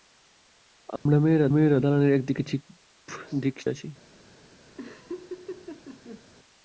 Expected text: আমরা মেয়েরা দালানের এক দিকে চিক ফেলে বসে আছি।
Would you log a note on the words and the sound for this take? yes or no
yes